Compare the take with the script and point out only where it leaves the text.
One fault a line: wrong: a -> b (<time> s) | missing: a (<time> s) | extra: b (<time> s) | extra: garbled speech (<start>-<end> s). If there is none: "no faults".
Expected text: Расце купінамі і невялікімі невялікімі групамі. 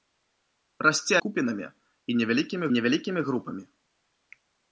no faults